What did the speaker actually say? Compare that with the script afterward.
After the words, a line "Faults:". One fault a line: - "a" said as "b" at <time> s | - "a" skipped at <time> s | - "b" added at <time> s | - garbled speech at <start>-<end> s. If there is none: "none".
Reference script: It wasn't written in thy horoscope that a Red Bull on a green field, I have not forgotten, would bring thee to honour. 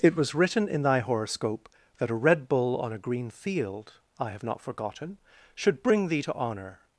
It was written in thy horoscope that a Red Bull on a green field, I have not forgotten, should bring thee to honour.
Faults:
- "wasn't" said as "was" at 0.1 s
- "would" said as "should" at 5.5 s